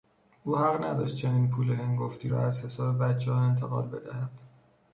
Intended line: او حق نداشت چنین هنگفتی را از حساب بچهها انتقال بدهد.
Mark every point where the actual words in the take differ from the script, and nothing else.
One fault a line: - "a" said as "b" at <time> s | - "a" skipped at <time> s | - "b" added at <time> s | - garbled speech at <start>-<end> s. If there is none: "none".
- "پول" added at 1.5 s